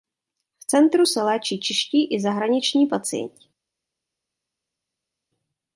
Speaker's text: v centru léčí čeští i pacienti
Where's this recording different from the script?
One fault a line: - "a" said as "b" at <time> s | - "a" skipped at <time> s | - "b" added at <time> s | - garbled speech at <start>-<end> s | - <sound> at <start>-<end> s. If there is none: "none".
- "se" added at 1.0 s
- "zahraniční" added at 2.2 s